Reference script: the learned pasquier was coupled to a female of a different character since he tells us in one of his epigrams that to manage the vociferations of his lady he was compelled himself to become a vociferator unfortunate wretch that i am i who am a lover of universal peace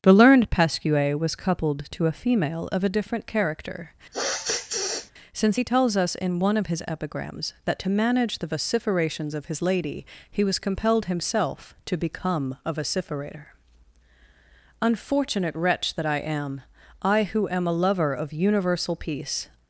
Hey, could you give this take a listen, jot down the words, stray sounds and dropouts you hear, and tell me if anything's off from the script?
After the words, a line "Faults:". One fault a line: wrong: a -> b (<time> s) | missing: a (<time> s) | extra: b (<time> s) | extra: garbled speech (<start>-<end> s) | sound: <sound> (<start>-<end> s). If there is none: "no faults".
the learned pasquier was coupled to a female of a different character since he tells us in one of his epigrams that to manage the vociferations of his lady he was compelled himself to become a vociferator unfortunate wretch that i am i who am a lover of universal peace
Faults:
sound: sniff (4.1-5.1 s)